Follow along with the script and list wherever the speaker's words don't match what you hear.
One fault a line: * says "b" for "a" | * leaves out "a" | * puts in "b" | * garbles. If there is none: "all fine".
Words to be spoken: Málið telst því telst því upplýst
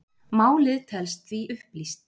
* leaves out "telst því"